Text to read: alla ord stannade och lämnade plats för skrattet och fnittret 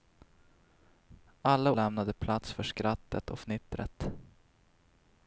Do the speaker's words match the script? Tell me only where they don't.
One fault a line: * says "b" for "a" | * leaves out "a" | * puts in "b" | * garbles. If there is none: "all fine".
* leaves out "ord stannade och"